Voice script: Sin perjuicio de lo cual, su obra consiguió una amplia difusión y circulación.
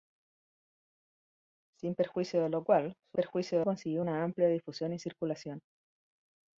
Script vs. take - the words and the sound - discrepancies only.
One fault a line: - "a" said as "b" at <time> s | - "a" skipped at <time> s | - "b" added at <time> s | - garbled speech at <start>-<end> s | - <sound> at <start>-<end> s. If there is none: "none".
- "obra" said as "perjuicio" at 3.1 s